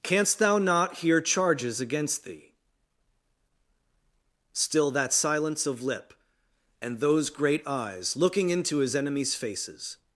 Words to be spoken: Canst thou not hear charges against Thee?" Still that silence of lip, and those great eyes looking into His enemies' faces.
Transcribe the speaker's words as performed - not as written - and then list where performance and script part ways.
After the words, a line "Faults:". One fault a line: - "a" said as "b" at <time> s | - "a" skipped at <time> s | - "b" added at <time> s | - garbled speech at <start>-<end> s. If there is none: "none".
Canst thou not hear charges against Thee?" Still that silence of lip, and those great eyes looking into His enemies' faces.
Faults:
none